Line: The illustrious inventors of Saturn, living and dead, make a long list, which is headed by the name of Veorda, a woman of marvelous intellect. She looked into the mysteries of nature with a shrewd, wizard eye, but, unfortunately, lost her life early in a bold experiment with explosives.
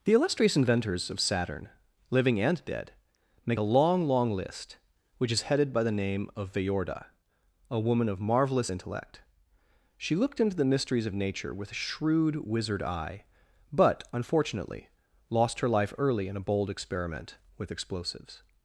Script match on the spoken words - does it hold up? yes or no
no